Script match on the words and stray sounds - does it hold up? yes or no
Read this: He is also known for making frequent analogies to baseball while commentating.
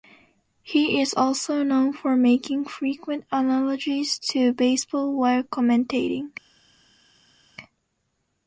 yes